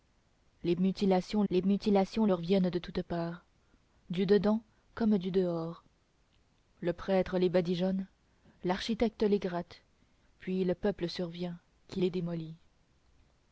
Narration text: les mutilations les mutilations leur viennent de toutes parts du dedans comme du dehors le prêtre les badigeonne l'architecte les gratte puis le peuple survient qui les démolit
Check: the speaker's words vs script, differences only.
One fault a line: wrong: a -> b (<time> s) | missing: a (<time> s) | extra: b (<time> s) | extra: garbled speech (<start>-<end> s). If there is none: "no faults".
no faults